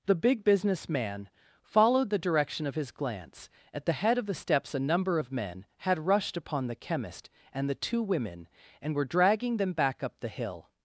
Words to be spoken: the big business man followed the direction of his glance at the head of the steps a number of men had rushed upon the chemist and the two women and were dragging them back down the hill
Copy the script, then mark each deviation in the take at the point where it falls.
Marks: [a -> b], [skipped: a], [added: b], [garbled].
the big business man followed the direction of his glance at the head of the steps a number of men had rushed upon the chemist and the two women and were dragging them back [down -> up] the hill